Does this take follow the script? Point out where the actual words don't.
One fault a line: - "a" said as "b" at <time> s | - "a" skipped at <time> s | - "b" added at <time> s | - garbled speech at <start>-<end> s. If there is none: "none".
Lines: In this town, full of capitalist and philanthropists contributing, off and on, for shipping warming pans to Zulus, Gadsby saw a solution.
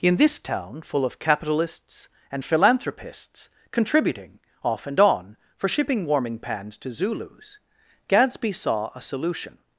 - "capitalist" said as "capitalists" at 1.2 s